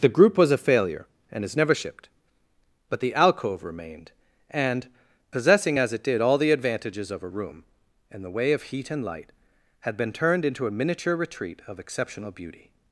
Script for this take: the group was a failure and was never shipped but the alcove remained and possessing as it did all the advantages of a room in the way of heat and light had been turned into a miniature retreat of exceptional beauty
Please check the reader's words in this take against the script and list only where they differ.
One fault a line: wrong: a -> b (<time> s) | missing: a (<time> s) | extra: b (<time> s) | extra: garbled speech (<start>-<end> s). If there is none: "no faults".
wrong: was -> is (1.4 s)